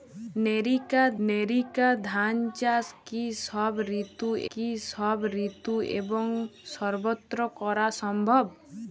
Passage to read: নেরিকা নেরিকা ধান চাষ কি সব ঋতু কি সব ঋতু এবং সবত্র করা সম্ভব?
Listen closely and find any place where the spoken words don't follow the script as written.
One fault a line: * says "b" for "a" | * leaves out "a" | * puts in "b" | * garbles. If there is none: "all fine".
all fine